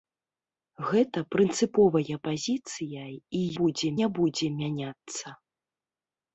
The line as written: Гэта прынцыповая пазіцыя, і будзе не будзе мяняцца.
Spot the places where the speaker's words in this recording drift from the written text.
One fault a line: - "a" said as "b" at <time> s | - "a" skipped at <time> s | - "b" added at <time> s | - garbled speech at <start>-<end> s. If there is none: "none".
none